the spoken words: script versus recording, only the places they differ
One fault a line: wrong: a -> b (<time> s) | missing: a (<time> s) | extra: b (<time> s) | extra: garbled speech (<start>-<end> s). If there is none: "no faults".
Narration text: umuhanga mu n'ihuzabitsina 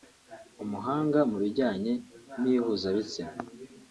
extra: bijyanye (1.4 s)